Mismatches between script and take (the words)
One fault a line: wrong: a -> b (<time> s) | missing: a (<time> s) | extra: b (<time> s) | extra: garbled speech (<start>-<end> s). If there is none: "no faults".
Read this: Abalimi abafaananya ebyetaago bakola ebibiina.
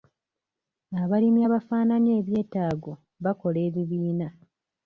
no faults